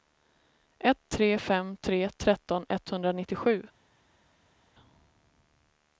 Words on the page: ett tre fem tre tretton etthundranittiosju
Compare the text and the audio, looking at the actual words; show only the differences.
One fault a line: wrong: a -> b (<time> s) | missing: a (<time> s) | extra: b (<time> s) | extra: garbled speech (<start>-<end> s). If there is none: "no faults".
no faults